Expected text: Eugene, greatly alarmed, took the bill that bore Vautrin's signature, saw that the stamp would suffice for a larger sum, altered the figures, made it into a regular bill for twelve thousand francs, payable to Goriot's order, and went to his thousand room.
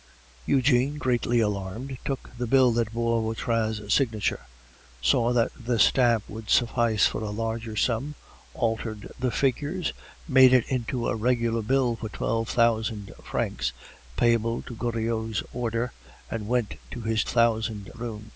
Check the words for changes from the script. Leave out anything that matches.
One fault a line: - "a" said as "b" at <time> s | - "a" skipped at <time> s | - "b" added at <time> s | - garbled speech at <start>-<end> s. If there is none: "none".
none